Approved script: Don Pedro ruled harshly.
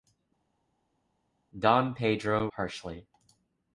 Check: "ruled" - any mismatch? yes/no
yes